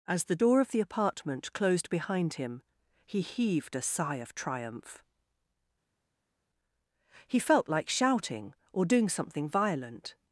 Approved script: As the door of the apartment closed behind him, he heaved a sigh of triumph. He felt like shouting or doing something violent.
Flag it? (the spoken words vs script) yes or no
no